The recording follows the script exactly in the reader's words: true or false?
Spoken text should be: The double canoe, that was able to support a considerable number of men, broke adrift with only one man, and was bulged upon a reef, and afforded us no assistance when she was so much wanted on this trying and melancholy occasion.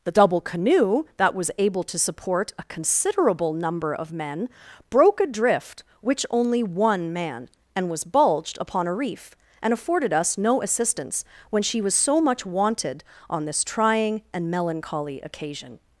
false